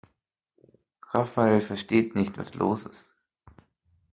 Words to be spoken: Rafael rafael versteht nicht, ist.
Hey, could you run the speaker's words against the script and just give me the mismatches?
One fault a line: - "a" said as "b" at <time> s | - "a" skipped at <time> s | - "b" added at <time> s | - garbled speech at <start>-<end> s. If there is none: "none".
- "rafael" skipped at 1.6 s
- "was los" added at 2.4 s